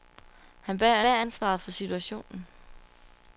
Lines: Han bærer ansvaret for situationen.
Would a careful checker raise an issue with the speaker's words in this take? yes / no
yes